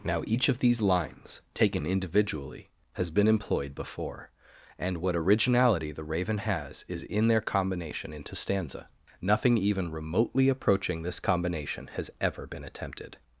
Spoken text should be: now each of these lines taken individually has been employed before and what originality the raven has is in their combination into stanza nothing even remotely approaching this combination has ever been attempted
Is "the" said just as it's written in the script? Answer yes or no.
yes